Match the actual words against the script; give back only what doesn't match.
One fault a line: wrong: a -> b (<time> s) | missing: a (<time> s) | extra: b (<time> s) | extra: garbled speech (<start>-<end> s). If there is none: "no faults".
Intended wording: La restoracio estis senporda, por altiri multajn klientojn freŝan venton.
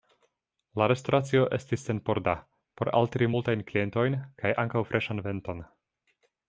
extra: kaj ankaŭ (4.4 s)